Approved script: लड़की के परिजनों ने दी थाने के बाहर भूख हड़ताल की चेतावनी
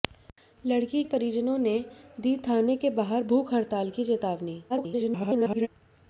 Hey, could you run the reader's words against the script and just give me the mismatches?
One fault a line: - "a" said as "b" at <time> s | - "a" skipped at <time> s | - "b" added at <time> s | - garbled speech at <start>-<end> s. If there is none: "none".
- "के" skipped at 1.0 s
- garbled speech at 4.7-5.7 s